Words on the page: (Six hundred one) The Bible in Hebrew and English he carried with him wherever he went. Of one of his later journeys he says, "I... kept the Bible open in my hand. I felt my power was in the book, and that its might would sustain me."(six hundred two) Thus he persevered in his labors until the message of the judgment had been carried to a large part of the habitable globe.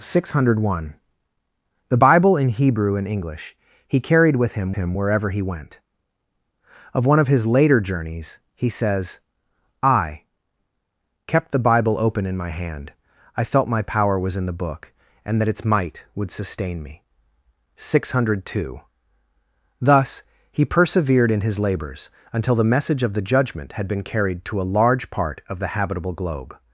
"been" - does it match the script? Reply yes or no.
yes